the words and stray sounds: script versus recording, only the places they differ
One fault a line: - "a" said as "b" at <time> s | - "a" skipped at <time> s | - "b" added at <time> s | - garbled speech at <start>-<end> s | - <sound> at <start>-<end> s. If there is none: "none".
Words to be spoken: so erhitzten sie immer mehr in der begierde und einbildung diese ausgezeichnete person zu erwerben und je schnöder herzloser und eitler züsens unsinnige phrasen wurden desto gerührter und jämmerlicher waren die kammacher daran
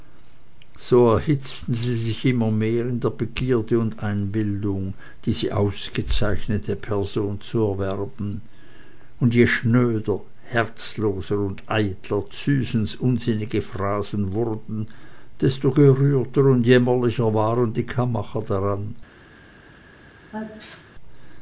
- "sich" added at 1.9 s
- sneeze at 20.3-20.9 s